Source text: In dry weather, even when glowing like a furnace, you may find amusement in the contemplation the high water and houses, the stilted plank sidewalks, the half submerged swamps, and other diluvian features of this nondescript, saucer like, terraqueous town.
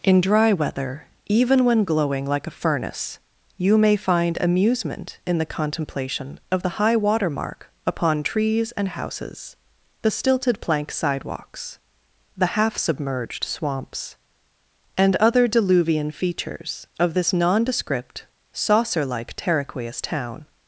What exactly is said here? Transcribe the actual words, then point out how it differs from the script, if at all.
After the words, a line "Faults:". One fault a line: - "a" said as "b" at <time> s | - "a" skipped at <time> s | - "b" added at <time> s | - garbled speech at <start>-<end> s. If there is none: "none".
In dry weather, even when glowing like a furnace, you may find amusement in the contemplation of the high water mark upon trees and houses, the stilted plank sidewalks, the half submerged swamps, and other diluvian features of this nondescript, saucer like, terraqueous town.
Faults:
- "of" added at 6.5 s
- "mark upon trees" added at 7.3 s